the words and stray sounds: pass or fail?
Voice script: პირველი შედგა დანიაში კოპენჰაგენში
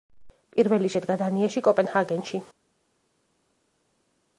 pass